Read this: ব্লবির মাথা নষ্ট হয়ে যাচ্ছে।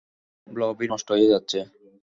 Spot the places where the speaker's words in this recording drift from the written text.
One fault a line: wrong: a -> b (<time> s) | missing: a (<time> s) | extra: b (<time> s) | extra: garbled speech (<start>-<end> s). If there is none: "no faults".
missing: মাথা (0.9 s)